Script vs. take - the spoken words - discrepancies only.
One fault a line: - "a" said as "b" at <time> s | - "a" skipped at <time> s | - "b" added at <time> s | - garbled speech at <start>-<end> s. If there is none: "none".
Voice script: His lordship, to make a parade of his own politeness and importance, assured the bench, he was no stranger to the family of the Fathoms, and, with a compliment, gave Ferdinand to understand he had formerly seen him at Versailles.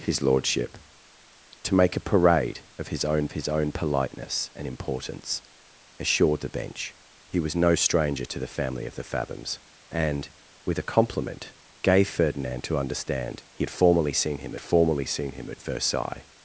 - "his own" added at 3.3 s
- "formerly seen him" added at 14.6 s